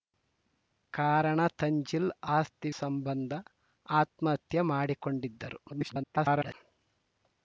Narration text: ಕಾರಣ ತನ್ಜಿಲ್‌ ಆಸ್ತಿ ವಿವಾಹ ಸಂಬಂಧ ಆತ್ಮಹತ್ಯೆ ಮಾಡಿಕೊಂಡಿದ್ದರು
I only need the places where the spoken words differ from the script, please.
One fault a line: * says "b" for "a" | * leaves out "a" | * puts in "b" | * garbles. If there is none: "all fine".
* leaves out "ವಿವಾಹ"
* garbles